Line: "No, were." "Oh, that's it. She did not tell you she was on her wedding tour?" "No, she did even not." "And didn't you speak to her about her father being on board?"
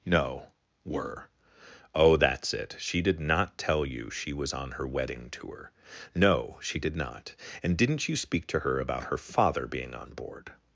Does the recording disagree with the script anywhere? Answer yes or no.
yes